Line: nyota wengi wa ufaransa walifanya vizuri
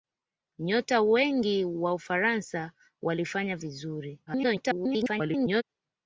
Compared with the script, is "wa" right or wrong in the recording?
right